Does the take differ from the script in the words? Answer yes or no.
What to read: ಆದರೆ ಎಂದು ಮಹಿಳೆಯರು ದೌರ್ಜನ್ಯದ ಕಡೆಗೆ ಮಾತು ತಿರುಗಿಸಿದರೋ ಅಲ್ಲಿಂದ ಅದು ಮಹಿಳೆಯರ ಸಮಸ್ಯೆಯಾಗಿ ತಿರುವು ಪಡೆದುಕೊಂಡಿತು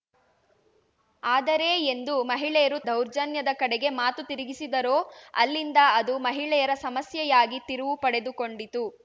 no